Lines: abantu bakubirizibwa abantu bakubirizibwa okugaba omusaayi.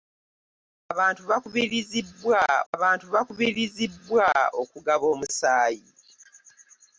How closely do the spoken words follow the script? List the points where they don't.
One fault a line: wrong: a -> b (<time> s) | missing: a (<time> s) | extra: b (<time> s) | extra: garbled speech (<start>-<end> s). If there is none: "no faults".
no faults